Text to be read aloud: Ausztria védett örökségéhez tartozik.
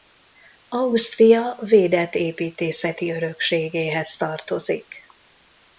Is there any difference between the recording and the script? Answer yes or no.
yes